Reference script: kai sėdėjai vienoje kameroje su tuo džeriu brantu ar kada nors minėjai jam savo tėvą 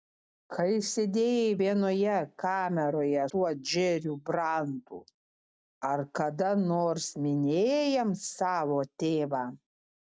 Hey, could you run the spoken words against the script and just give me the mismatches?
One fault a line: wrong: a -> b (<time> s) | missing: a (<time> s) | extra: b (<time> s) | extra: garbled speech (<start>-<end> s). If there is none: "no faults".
missing: su (3.2 s)